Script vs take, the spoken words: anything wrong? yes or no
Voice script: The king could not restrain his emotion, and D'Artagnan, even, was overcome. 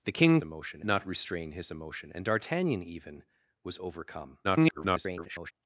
yes